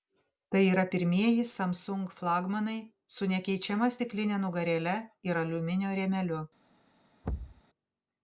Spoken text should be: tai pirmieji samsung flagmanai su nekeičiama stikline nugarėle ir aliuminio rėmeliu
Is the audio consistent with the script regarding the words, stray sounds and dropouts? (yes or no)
no